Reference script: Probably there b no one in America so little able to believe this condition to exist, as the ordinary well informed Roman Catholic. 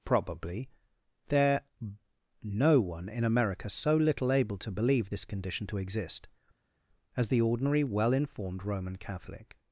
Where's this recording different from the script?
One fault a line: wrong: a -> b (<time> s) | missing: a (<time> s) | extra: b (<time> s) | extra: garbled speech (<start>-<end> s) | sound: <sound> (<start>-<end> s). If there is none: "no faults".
missing: b (1.6 s)